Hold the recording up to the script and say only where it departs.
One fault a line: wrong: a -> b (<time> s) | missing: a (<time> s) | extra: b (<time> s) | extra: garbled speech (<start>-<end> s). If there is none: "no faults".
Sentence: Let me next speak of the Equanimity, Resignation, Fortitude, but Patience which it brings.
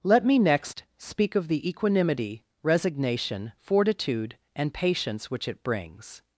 wrong: but -> and (4.5 s)